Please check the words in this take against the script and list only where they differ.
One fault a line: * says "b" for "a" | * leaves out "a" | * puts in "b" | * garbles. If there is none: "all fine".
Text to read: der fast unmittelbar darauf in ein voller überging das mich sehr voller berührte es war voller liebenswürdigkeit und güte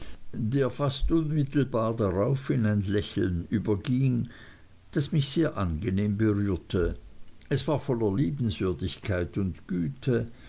* says "lächeln" for "voller"
* says "angenehm" for "voller"